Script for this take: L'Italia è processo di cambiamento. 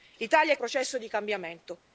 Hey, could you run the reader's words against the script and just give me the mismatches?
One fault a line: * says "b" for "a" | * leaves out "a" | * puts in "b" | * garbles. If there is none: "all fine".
all fine